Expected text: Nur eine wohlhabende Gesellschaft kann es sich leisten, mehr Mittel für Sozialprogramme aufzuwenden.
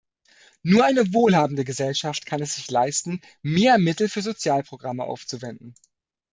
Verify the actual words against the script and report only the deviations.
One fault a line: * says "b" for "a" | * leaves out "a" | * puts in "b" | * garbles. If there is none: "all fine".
all fine